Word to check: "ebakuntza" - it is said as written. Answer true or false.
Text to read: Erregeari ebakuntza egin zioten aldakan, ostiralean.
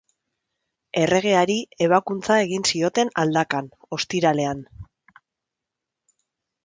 true